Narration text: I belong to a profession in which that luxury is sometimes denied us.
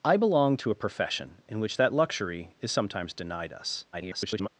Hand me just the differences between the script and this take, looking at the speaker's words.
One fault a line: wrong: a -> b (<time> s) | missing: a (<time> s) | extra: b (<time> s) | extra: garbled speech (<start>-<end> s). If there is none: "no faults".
extra: garbled speech (3.9-4.5 s)